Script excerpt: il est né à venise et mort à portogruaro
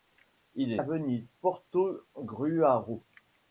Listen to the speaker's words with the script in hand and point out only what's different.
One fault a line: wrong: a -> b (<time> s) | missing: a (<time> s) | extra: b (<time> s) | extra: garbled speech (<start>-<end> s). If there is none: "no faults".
missing: né (0.8 s)
missing: et mort à (1.3 s)